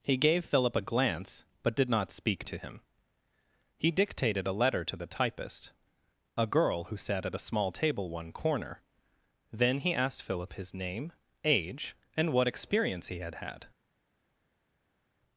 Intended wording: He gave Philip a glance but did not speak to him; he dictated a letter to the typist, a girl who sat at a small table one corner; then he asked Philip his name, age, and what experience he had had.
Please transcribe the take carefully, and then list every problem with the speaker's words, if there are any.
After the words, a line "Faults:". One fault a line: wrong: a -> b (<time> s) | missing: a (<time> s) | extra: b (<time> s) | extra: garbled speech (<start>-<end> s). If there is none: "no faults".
He gave Philip a glance but did not speak to him; he dictated a letter to the typist, a girl who sat at a small table one corner; then he asked Philip his name, age, and what experience he had had.
Faults:
no faults